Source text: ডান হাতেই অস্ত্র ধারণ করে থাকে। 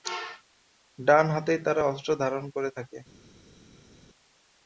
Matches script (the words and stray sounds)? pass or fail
fail